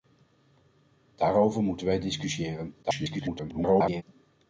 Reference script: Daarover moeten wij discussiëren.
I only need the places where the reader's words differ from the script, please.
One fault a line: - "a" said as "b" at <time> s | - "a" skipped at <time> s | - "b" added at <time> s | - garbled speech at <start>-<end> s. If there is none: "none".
- garbled speech at 2.8-4.0 s